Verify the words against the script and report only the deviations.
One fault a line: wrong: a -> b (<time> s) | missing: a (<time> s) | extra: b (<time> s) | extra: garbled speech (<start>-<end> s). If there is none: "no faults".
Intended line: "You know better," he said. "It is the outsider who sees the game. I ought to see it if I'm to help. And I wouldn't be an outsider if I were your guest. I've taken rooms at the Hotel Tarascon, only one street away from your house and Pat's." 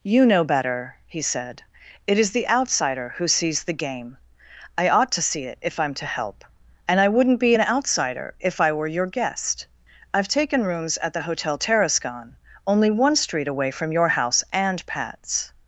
no faults